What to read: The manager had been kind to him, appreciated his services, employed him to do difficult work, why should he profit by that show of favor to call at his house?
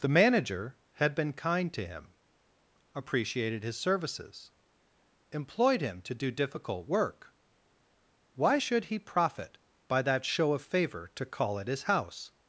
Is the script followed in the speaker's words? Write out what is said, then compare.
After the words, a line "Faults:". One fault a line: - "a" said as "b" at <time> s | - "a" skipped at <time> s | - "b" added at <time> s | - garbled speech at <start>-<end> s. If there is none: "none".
The manager had been kind to him, appreciated his services, employed him to do difficult work, why should he profit by that show of favor to call at his house?
Faults:
none